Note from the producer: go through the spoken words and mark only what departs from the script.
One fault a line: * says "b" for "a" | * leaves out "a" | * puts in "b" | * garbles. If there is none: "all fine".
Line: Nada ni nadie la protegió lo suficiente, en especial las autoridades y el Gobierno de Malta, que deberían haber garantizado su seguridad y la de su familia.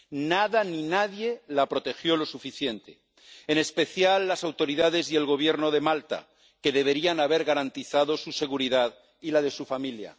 all fine